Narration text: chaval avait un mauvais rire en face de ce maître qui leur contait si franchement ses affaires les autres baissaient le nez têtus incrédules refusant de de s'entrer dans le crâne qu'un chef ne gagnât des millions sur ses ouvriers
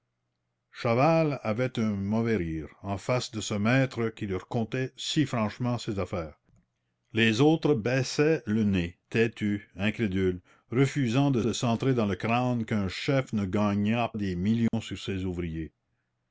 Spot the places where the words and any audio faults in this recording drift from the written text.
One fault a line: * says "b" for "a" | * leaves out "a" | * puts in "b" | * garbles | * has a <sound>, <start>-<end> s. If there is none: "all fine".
* has a dropout, 14.7-14.7 s